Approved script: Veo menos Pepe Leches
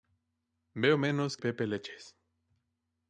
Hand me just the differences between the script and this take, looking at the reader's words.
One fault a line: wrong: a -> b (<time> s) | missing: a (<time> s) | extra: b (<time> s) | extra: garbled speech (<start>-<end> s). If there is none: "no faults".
no faults